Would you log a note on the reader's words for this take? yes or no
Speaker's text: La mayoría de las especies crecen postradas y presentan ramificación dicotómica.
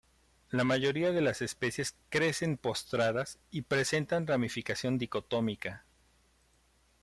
no